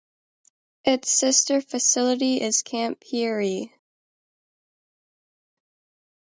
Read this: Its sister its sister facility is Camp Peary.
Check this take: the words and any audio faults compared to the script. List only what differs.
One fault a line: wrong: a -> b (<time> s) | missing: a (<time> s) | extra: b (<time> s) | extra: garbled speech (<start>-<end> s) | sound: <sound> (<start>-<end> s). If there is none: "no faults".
missing: its sister (1.6 s)